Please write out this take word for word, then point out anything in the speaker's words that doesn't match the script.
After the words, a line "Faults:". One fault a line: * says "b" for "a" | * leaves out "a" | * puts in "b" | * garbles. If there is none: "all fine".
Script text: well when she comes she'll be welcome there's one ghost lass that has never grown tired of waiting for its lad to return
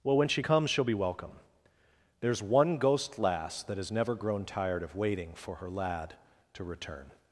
well when she comes she'll be welcome there's one ghost lass that has never grown tired of waiting for her lad to return
Faults:
* says "her" for "its"